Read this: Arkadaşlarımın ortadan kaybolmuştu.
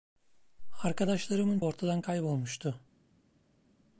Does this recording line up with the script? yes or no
yes